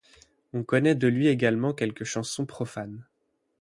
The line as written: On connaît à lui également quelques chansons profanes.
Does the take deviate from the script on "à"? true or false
true